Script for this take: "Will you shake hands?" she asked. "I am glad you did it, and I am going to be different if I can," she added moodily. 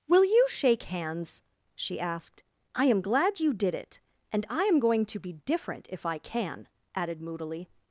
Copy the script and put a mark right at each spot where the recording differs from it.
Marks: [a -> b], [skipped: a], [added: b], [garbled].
"Will you shake hands?" she asked. "I am glad you did it, and I am going to be different if I can," [skipped: she] added moodily.